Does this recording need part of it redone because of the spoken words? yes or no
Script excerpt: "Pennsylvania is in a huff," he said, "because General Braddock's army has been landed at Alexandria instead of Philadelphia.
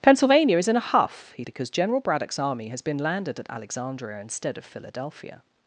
yes